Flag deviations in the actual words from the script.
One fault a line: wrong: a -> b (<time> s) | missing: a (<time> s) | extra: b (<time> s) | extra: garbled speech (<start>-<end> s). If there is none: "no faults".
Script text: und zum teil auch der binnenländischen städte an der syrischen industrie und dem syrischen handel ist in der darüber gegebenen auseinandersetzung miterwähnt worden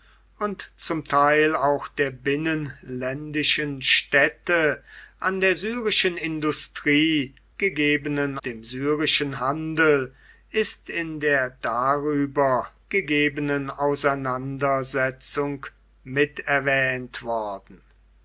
wrong: und -> gegebenen (7.6 s)